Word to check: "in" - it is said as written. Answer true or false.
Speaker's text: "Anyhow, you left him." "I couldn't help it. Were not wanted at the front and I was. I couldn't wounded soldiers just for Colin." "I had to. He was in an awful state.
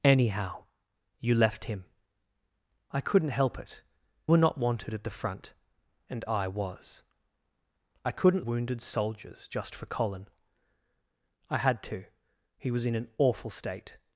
true